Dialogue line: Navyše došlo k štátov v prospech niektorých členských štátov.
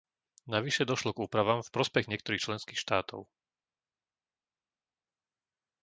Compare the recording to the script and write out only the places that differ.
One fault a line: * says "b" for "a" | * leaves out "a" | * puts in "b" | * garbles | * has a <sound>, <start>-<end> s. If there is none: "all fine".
* says "úpravám" for "štátov"